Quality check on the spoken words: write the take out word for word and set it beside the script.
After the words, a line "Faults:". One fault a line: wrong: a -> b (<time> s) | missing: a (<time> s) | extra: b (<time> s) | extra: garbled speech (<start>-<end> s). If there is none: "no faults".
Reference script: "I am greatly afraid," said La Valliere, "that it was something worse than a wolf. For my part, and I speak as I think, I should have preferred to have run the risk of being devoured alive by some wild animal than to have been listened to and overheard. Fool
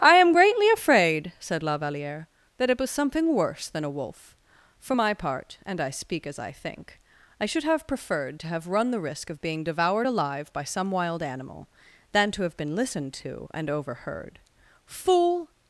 "I am greatly afraid," said La Valliere, "that it was something worse than a wolf. For my part, and I speak as I think, I should have preferred to have run the risk of being devoured alive by some wild animal than to have been listened to and overheard. Fool
Faults:
no faults